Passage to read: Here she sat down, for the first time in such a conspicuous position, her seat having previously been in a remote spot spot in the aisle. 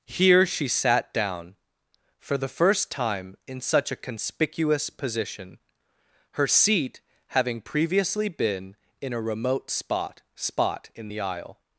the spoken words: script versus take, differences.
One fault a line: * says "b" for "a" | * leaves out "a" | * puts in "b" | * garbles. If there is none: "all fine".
all fine